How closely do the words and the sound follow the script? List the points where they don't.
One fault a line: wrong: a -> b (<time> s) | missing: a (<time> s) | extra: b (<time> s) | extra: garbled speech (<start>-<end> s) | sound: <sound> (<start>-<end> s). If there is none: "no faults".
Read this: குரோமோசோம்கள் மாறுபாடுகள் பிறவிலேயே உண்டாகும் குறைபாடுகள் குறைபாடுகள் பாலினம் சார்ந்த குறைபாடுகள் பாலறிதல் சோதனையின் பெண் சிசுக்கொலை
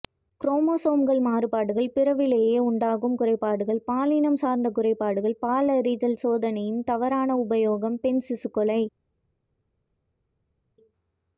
missing: குறைபாடுகள் (3.8 s)
extra: தவறான உபயோகம் (6.8 s)